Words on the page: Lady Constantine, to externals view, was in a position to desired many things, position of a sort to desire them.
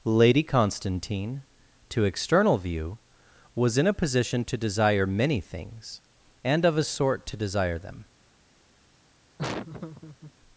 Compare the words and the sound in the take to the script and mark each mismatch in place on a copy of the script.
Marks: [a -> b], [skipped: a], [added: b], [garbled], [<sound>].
Lady Constantine, to [externals -> external] view, was in a position to [desired -> desire] many things, [position -> and] of a sort to desire them. [laugh]